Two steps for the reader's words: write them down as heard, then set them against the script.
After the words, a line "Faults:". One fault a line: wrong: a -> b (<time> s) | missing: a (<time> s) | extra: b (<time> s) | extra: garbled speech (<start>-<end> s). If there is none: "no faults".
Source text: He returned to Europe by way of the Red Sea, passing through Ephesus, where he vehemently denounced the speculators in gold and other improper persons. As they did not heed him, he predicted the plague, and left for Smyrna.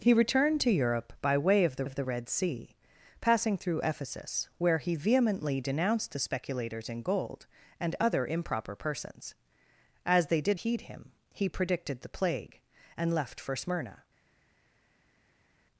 He returned to Europe by way of the of the Red Sea, passing through Ephesus, where he vehemently denounced the speculators in gold and other improper persons. As they did heed him, he predicted the plague, and left for Smyrna.
Faults:
extra: of the (1.8 s)
missing: not (10.6 s)